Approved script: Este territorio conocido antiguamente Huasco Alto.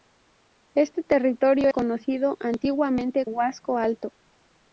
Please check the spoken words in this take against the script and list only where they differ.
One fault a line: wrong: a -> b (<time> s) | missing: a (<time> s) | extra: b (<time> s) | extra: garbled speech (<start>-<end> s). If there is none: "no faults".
no faults